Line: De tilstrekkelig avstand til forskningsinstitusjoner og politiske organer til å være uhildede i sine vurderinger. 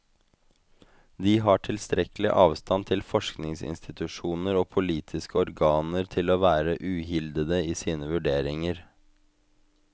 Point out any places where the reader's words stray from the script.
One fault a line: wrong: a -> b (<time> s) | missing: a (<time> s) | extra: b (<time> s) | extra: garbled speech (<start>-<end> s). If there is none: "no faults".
extra: har (1.5 s)